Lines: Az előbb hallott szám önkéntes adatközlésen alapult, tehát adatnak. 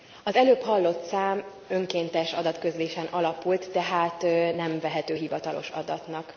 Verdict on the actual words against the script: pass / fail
fail